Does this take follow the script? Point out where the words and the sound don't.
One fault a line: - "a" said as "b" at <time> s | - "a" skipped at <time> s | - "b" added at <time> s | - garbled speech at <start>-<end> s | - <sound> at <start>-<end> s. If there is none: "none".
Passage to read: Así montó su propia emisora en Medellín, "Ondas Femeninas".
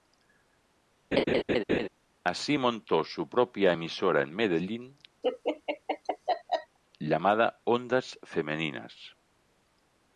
- laugh at 1.1-1.9 s
- laugh at 5.2-6.8 s
- "llamada" added at 7.0 s